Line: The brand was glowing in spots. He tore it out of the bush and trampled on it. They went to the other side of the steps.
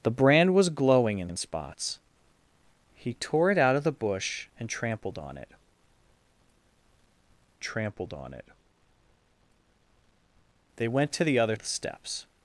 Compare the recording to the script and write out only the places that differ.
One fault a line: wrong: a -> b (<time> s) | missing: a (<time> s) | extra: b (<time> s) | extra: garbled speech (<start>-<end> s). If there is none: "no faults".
extra: in (1.3 s)
extra: trampled on it (7.6 s)
missing: side (11.6 s)